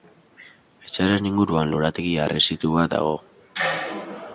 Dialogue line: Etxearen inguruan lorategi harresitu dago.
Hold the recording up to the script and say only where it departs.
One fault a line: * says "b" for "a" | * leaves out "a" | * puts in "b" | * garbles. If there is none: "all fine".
* puts in "bat"